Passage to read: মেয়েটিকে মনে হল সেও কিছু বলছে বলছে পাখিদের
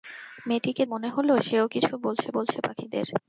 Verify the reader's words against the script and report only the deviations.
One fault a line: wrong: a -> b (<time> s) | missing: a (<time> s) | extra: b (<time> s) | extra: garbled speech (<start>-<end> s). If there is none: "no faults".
no faults